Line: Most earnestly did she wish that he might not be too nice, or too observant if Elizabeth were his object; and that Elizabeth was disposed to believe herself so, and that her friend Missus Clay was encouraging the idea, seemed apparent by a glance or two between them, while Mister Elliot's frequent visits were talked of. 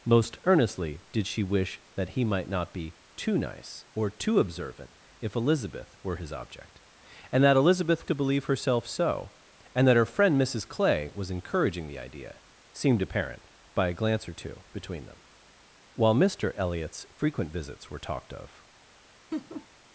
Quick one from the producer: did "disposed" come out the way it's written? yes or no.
no